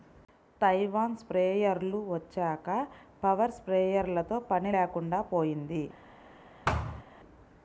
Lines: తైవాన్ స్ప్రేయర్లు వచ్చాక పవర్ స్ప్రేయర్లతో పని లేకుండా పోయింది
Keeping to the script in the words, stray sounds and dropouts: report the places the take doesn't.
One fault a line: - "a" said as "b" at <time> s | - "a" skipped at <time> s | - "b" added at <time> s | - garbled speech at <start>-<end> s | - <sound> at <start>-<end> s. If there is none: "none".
- thud at 6.7-7.0 s